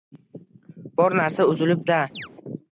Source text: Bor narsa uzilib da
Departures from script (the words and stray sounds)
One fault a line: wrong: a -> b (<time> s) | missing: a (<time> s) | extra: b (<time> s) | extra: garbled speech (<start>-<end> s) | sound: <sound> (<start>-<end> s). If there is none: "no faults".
sound: chirp (2.1-2.3 s)